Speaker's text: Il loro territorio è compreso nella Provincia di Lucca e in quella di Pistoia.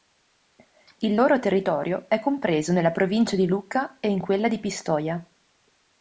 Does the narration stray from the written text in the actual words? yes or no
no